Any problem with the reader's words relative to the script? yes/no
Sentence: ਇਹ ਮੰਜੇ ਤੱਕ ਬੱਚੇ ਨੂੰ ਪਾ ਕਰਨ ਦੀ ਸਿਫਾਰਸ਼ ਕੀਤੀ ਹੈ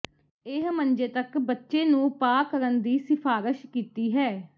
no